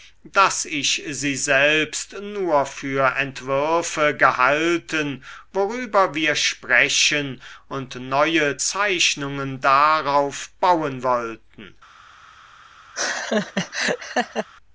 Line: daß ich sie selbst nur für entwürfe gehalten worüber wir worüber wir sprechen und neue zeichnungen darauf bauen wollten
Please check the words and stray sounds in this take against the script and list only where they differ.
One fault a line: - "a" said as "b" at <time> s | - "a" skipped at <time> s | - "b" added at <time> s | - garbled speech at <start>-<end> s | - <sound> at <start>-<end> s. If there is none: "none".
- "worüber wir" skipped at 6.4 s
- laugh at 12.9-14.5 s